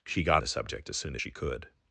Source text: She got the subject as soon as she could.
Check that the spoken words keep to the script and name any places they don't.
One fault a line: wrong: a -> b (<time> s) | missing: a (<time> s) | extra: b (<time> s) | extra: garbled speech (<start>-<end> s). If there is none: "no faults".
no faults